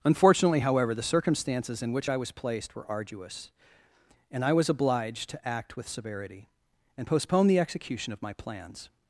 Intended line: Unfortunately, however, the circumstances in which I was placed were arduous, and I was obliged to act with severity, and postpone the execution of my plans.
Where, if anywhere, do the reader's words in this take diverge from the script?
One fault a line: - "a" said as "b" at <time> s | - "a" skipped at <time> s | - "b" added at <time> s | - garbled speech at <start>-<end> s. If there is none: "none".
none